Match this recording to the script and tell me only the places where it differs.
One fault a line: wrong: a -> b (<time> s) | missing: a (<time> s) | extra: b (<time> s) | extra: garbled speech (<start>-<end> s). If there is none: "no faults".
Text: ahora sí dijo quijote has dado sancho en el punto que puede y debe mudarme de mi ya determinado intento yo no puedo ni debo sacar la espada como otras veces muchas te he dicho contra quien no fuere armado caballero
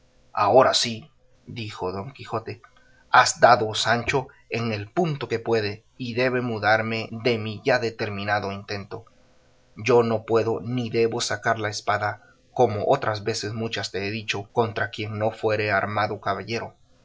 extra: don (1.9 s)